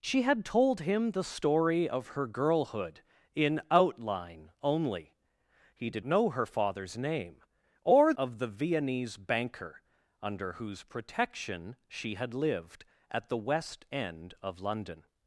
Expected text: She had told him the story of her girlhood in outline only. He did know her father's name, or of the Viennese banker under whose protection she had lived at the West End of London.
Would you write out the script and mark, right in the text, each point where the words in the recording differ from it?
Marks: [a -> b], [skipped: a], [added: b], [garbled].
She had told him the story of her girlhood in outline only. He did know her father's name, or of the Viennese banker under whose protection she had lived at the West End of London.